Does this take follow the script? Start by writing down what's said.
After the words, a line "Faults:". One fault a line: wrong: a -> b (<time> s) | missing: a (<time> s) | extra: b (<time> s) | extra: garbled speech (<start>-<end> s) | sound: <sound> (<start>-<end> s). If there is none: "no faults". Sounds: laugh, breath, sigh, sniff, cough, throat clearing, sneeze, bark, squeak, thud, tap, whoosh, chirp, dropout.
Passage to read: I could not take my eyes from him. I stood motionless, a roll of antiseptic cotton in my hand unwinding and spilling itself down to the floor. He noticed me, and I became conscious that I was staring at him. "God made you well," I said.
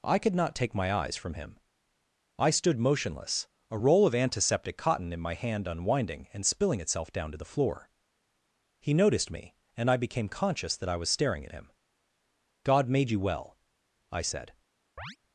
I could not take my eyes from him. I stood motionless, a roll of antiseptic cotton in my hand unwinding and spilling itself down to the floor. He noticed me, and I became conscious that I was staring at him. "God made you well," I said.
Faults:
sound: chirp (15.0-15.2 s)